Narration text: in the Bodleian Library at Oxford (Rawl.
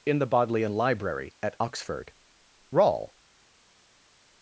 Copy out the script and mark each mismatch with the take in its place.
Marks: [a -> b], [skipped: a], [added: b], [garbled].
in the Bodleian Library at Oxford (Rawl.